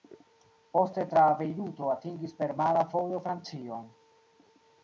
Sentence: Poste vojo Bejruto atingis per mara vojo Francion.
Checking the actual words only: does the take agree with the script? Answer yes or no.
no